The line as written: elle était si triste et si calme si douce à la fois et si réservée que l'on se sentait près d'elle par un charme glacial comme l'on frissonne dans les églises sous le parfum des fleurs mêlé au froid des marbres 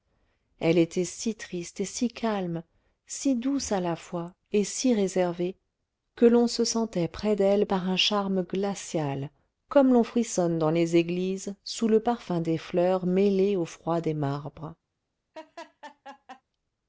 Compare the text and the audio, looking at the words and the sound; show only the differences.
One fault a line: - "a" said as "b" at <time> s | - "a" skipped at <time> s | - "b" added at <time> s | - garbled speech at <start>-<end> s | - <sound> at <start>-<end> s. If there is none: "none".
- laugh at 15.3-16.4 s